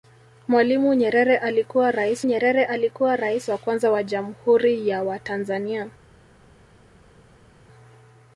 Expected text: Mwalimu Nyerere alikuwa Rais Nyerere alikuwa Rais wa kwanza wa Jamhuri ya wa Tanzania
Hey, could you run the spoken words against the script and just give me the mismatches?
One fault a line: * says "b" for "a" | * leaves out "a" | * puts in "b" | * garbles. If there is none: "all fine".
all fine